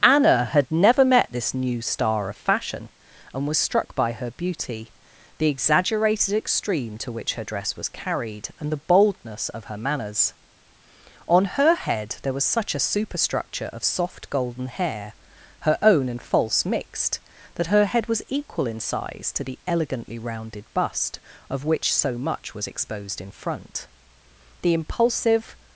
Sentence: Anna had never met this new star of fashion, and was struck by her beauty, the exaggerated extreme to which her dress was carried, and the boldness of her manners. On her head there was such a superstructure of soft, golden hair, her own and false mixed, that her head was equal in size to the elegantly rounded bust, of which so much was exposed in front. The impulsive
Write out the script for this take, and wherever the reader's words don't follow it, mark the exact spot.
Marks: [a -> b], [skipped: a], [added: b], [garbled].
Anna had never met this new star of fashion, and was struck by her beauty, the exaggerated extreme to which her dress was carried, and the boldness of her manners. On her head there was such a superstructure of soft, golden hair, her own and false mixed, that her head was equal in size to the elegantly rounded bust, of which so much was exposed in front. The impulsive